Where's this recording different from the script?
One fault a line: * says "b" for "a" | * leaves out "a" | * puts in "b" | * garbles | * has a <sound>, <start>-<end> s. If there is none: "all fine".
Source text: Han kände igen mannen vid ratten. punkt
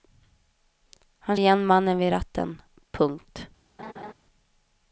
* leaves out "kände"
* has a laugh, 3.8-4.1 s